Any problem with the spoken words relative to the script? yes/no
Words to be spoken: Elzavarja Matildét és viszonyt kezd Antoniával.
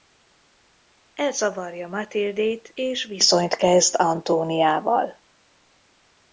no